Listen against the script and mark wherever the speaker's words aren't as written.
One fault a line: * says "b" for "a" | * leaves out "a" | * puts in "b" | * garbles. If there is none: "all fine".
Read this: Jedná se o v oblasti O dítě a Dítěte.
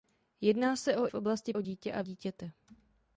all fine